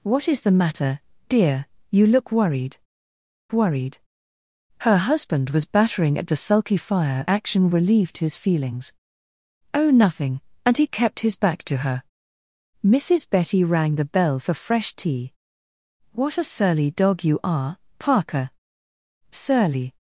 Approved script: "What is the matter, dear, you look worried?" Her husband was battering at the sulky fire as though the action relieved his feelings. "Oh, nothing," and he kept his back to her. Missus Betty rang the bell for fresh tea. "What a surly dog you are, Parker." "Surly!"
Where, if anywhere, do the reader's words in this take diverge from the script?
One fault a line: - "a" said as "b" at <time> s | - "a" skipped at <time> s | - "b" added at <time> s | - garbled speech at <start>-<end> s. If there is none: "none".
- "worried" added at 3.5 s
- "as though the" skipped at 7.3 s